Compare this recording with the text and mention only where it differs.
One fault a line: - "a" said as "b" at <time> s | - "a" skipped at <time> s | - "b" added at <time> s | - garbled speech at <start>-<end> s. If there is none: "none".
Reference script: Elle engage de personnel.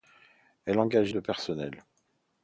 none